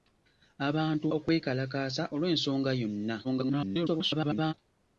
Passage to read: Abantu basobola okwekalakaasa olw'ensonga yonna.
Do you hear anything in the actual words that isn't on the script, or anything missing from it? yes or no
yes